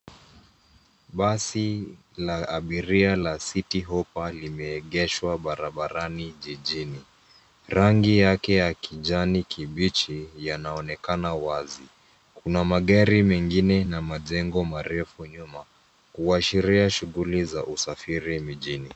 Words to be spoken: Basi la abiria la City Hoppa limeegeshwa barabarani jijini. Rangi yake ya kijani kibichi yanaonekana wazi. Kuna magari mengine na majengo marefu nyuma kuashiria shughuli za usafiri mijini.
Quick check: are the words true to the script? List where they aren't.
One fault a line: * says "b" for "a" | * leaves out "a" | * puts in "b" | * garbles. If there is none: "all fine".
all fine